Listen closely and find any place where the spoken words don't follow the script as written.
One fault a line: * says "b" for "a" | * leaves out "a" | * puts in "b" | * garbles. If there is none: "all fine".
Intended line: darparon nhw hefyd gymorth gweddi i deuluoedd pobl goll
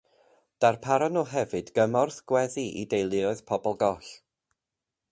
all fine